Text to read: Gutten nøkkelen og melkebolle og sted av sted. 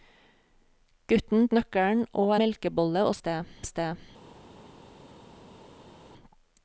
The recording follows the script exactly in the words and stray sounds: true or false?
true